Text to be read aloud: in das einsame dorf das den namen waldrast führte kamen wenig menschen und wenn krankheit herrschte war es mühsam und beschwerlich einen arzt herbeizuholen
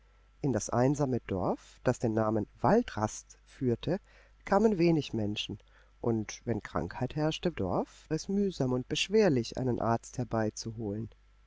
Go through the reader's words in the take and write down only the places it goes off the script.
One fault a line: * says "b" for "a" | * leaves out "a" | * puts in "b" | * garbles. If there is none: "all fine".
* says "dorf" for "war"